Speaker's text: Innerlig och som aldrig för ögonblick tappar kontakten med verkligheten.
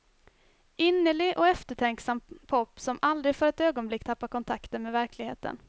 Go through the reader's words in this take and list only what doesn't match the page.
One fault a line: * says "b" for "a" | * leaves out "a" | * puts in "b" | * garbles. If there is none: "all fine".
* puts in "eftertänksam pop"
* puts in "ett"